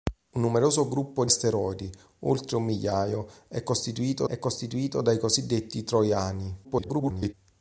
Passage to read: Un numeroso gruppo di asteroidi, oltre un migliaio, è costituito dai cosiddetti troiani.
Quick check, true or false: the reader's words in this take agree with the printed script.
false